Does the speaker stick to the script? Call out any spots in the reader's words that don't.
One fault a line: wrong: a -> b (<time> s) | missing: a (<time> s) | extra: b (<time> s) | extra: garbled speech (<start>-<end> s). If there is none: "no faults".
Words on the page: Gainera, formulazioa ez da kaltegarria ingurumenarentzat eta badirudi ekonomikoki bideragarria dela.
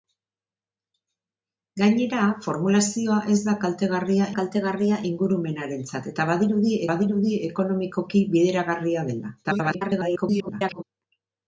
extra: kaltegarria (4.4 s)
extra: badirudi (6.9 s)
extra: garbled speech (9.4-10.8 s)